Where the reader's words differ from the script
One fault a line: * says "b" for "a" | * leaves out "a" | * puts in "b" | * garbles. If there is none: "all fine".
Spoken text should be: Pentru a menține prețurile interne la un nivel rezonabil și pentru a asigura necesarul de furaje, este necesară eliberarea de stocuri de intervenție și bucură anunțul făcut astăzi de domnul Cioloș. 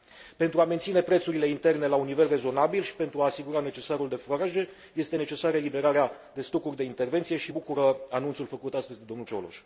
all fine